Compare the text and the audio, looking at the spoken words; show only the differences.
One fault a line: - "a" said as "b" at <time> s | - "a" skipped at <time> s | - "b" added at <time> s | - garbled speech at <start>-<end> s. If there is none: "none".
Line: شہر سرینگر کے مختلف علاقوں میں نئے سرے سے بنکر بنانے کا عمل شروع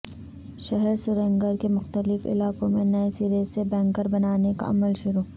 none